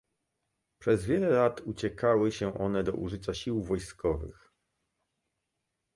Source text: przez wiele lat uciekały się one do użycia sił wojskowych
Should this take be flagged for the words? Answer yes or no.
no